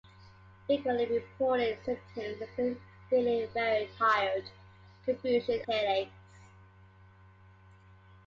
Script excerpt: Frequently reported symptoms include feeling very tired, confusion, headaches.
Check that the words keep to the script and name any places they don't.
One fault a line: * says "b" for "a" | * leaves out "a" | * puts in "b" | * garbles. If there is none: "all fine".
all fine